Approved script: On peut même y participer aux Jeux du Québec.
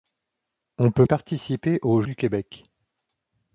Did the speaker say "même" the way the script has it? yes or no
no